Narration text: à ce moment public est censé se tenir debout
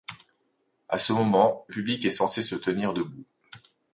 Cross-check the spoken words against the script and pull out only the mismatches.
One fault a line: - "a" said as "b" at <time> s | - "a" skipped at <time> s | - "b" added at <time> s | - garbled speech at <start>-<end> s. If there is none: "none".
none